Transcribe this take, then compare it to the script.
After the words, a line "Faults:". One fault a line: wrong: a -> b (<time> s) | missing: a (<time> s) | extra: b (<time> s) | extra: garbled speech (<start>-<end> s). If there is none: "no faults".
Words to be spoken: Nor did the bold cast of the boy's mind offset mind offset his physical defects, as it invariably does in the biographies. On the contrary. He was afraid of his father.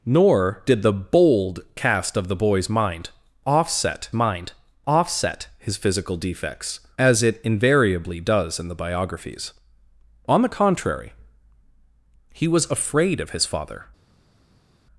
Nor did the bold cast of the boy's mind offset mind offset his physical defects, as it invariably does in the biographies. On the contrary. He was afraid of his father.
Faults:
no faults